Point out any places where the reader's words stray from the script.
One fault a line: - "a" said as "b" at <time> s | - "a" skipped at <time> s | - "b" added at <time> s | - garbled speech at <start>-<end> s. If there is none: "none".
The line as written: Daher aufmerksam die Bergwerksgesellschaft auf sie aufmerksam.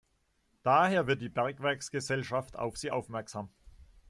- "aufmerksam" said as "wird" at 1.1 s